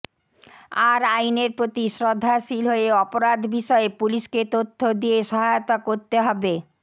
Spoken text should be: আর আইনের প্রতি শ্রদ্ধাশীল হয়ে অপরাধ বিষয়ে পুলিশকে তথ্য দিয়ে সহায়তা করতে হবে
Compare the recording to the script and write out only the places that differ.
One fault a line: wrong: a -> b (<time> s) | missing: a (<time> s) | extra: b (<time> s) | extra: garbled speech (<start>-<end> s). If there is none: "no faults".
no faults